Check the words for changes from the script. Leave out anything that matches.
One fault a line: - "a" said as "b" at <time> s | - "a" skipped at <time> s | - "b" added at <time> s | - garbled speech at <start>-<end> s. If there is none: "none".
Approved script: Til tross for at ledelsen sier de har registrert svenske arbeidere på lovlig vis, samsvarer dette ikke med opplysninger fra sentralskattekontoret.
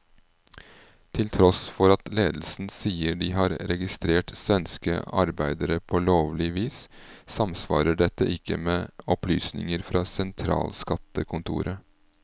none